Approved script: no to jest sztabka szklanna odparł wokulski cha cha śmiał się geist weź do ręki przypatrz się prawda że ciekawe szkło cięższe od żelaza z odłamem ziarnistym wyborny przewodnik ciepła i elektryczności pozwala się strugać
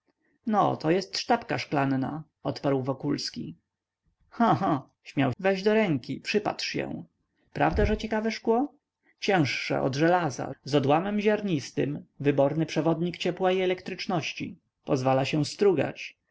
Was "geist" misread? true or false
true